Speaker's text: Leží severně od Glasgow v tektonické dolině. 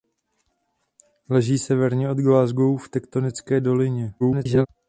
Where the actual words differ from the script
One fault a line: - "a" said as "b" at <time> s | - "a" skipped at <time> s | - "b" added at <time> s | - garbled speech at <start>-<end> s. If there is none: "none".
- garbled speech at 4.2-4.7 s